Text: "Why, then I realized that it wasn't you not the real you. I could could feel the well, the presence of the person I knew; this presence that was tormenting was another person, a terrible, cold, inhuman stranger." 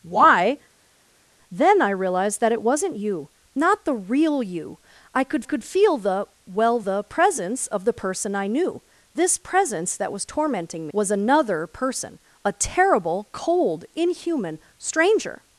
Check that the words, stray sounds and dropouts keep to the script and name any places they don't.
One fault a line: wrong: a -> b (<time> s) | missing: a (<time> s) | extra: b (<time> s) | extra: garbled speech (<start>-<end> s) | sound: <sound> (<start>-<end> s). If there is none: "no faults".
no faults